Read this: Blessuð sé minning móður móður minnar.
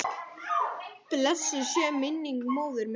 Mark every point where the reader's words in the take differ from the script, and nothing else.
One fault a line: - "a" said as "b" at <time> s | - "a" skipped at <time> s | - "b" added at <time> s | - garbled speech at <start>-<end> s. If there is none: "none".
- "móður" skipped at 2.8 s